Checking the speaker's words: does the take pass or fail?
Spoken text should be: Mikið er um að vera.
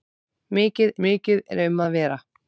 fail